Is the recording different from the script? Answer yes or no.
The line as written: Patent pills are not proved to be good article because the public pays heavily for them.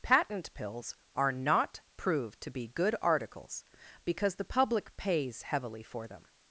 yes